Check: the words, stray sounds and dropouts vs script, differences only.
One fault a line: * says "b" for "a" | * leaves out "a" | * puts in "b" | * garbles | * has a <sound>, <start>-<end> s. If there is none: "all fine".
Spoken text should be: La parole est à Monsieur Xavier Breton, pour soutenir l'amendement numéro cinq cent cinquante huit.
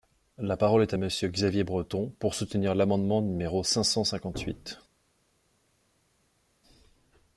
all fine